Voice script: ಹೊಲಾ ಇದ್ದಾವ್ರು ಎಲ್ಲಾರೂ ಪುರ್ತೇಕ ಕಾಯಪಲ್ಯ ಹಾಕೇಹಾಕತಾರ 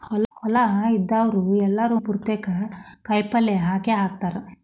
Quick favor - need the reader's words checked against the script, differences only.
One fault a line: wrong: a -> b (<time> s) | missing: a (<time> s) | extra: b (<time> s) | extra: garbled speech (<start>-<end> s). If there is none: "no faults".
no faults